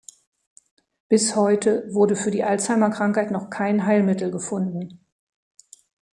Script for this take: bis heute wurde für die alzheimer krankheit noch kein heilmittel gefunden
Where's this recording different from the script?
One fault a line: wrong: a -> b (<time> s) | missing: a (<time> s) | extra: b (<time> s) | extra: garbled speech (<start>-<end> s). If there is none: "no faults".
no faults